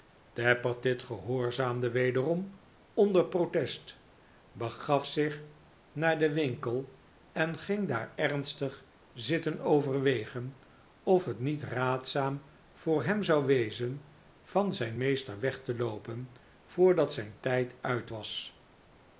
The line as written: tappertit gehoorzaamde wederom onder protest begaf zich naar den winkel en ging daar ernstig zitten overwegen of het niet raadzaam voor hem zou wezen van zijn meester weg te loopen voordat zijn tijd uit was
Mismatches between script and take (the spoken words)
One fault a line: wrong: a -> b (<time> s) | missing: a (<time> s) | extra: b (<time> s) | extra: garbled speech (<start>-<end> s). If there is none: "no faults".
no faults